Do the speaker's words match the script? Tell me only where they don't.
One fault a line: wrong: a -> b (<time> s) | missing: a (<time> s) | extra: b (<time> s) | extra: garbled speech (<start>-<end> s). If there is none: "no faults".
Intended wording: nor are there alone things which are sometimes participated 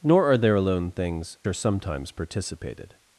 missing: which (1.4 s)